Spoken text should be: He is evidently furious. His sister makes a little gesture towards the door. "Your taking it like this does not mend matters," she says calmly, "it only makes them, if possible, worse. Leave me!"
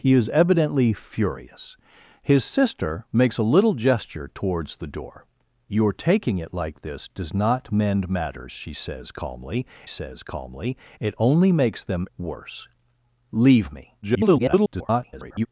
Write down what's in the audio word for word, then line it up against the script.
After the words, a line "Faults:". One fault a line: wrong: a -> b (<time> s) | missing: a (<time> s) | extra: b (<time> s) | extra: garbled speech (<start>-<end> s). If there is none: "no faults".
He is evidently furious. His sister makes a little gesture towards the door. "Your taking it like this does not mend matters," she says calmly says calmly, "it only makes them, worse. Leave me!" [garbled]
Faults:
extra: says calmly (9.9 s)
missing: if possible (12.1 s)
extra: garbled speech (14.0-15.5 s)